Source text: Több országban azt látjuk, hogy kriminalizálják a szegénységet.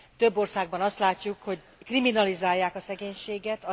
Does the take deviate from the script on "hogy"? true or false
false